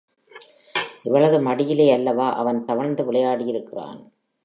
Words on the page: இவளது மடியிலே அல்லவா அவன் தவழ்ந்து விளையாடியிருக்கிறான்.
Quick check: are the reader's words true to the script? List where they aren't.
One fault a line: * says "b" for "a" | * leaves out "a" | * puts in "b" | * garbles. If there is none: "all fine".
all fine